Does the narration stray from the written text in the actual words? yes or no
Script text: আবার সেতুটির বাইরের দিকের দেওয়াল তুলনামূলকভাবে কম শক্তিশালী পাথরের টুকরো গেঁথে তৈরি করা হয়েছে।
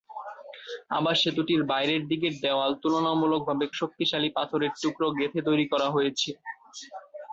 yes